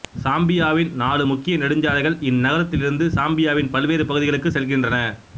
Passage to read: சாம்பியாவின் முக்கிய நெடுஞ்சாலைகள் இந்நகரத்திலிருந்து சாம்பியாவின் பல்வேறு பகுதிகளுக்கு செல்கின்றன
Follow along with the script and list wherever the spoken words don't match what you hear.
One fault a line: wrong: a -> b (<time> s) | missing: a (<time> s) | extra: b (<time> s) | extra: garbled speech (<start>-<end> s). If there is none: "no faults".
extra: நாலு (0.9 s)